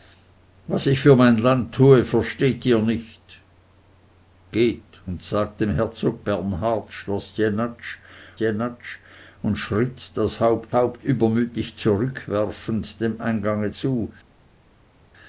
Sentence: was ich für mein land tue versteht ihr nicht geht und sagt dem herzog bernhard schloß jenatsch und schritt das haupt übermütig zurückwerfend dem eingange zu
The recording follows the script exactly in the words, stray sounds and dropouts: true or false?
false